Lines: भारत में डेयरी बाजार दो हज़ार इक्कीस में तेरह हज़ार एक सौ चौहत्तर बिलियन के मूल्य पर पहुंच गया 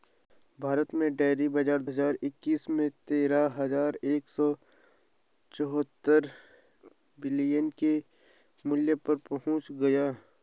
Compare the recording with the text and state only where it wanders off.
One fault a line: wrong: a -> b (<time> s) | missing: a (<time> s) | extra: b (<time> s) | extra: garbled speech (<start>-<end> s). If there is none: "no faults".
missing: दो (1.8 s)